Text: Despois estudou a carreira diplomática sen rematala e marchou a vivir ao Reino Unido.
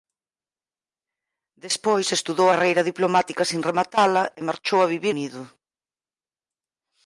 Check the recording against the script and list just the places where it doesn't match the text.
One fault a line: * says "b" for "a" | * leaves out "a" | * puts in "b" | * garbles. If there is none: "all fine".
* leaves out "a"
* leaves out "ao Reino"